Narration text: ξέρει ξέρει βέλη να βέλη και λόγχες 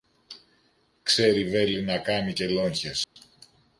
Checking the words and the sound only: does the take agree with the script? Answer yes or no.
no